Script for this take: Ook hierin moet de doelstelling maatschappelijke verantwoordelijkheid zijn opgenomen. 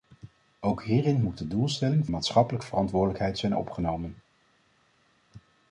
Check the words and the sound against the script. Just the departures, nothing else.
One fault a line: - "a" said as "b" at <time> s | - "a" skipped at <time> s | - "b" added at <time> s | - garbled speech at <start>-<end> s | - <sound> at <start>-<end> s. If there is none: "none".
none